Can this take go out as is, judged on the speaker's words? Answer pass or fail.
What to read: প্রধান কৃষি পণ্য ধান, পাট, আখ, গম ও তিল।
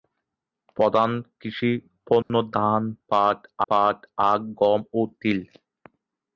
fail